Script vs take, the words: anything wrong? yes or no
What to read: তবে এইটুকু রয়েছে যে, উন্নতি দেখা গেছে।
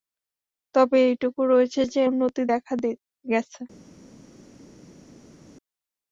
no